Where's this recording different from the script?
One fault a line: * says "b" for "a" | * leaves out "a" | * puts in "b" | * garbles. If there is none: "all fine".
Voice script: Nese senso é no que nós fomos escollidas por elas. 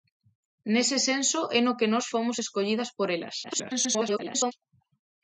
* garbles